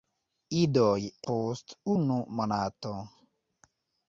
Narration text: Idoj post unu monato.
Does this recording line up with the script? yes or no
yes